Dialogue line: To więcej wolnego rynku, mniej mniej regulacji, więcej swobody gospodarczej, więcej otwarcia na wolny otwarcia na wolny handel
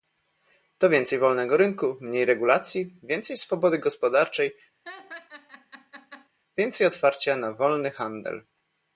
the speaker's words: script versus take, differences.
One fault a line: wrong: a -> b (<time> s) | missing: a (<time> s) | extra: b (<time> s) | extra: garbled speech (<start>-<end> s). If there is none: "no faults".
missing: mniej (2.2 s)
missing: otwarcia na wolny (7.9 s)